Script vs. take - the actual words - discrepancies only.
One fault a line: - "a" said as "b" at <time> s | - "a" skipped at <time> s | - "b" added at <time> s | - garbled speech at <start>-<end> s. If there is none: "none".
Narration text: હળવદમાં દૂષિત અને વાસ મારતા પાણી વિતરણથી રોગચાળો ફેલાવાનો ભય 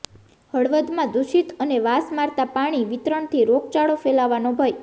none